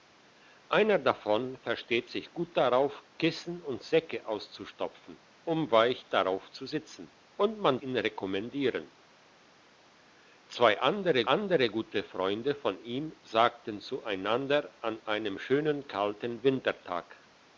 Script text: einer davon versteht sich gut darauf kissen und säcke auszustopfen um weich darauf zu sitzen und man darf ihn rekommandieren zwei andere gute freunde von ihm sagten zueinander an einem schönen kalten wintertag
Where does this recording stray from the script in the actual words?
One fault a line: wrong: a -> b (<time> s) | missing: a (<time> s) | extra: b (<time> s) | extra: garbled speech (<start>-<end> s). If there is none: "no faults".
missing: darf (7.8 s)
extra: andere (11.3 s)